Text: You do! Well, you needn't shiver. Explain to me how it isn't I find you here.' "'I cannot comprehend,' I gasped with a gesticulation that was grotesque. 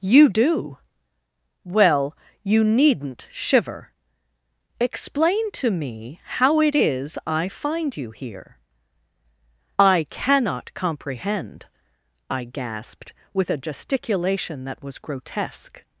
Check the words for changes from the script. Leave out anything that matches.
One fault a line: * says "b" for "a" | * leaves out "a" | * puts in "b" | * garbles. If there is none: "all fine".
* says "is" for "isn't"